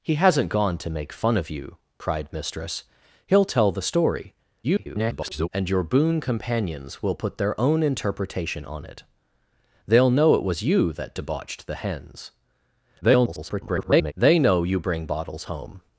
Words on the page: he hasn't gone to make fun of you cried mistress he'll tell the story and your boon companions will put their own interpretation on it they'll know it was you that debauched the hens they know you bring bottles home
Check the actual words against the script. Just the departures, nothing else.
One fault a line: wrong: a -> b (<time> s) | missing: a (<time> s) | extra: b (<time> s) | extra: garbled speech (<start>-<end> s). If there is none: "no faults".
extra: garbled speech (4.6-5.5 s)
extra: garbled speech (13.0-14.1 s)